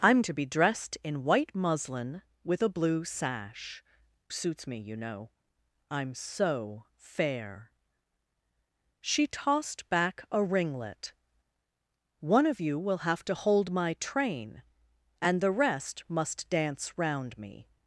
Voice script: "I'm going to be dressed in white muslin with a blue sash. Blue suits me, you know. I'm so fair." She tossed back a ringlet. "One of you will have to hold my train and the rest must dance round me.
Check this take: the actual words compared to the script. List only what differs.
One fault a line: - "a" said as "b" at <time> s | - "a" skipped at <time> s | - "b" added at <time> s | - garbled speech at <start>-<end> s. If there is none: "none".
- "going" skipped at 0.2 s
- "Blue" skipped at 3.8 s